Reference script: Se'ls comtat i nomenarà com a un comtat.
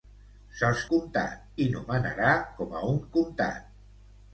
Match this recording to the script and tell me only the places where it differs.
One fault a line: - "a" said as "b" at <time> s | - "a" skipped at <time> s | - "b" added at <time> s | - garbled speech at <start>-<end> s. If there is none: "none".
none